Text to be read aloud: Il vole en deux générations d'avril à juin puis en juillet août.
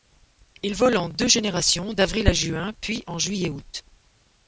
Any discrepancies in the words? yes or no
no